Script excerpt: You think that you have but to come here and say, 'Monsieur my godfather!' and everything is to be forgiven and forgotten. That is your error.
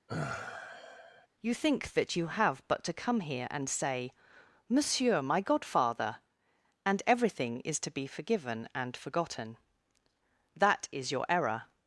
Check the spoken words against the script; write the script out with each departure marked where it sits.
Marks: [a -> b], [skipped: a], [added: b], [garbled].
You think that you have but to come here and say, 'Monsieur my godfather!' and everything is to be forgiven and forgotten. That is your error.